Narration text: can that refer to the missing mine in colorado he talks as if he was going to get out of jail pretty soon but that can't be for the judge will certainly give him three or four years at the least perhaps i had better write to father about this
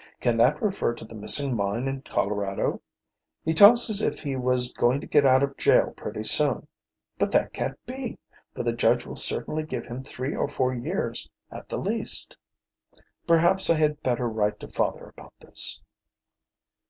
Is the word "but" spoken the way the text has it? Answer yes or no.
yes